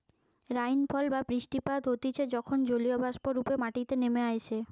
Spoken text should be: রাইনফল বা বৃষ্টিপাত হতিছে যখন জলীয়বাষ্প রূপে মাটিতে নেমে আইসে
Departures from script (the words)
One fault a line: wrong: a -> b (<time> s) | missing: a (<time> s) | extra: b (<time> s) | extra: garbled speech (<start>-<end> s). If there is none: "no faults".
no faults